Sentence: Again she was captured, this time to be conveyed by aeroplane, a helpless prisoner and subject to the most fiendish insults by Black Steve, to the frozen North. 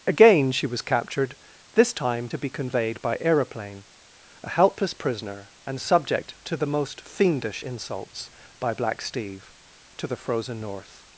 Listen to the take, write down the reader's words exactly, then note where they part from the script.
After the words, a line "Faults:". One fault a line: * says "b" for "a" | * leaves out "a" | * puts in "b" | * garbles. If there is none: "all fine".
Again she was captured, this time to be conveyed by aeroplane, a helpless prisoner and subject to the most fiendish insults by Black Steve, to the frozen North.
Faults:
all fine